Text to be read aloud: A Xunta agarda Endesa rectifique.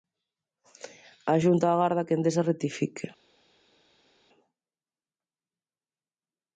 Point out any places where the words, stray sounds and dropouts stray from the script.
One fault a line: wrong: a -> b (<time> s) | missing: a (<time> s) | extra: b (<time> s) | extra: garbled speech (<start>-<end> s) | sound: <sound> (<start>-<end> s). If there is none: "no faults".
extra: que (2.0 s)